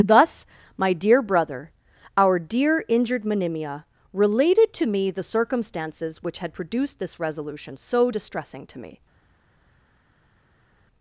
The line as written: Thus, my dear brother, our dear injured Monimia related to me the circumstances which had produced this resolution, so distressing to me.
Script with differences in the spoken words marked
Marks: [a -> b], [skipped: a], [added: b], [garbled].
Thus, my dear brother, our dear injured Monimia related to me the circumstances which had produced this resolution, so distressing to me.